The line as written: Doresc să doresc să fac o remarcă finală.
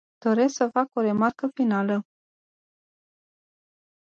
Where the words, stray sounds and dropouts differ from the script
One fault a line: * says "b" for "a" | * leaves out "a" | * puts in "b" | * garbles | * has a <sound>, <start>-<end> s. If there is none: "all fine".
* leaves out "doresc să"